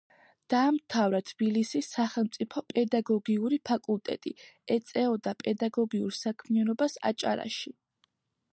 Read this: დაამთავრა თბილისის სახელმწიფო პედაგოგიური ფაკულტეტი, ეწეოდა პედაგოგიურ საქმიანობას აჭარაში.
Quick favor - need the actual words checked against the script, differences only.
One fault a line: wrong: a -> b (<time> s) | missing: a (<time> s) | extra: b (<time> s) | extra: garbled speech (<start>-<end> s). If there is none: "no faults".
no faults